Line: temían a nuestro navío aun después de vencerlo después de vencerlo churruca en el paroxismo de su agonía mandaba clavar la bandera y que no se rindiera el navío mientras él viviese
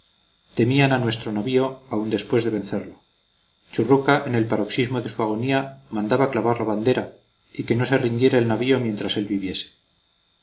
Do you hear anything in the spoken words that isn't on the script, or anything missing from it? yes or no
yes